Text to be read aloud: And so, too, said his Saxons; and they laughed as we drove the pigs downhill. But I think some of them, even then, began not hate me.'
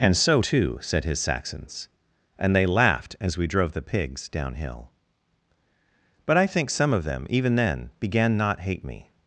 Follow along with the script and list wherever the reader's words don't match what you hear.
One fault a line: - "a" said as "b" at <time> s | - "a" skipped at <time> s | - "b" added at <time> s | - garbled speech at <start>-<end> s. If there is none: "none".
none